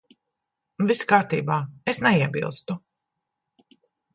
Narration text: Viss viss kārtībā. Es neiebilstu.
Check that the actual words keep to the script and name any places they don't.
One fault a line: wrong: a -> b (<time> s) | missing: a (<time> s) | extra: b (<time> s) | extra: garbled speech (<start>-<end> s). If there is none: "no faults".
missing: viss (1.1 s)